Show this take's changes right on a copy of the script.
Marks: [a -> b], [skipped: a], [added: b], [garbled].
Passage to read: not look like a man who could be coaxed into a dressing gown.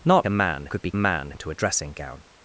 not [skipped: look like] a man [skipped: who] could be [coaxed -> man] into a dressing gown.